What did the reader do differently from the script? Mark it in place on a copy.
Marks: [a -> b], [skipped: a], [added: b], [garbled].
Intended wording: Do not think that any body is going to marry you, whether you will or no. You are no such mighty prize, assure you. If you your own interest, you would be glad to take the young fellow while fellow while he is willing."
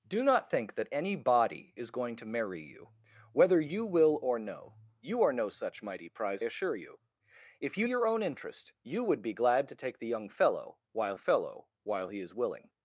Do not think that any body is going to marry you, whether you will or no. You are no such mighty prize, assure you. If you your own interest, you would be glad to take the young fellow while fellow while he is willing."